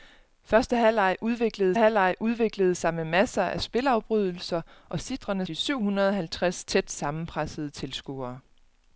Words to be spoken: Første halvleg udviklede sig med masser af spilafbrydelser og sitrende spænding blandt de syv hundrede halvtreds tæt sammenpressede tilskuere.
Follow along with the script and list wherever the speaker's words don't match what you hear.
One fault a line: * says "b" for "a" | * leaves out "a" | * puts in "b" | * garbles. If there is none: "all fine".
* puts in "halvleg udviklede"
* leaves out "spænding blandt"